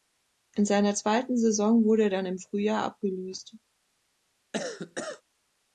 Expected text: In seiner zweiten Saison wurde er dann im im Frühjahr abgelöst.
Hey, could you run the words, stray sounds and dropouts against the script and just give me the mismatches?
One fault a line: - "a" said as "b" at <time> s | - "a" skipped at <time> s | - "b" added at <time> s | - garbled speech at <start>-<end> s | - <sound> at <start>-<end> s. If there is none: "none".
- "im" skipped at 2.4 s
- cough at 4.5-5.2 s